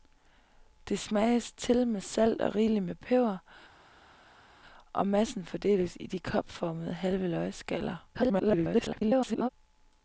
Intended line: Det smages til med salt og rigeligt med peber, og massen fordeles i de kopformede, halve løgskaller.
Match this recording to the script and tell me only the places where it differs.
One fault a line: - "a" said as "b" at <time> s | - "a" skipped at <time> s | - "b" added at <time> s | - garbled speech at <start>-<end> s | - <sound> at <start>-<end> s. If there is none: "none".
- garbled speech at 8.1-9.5 s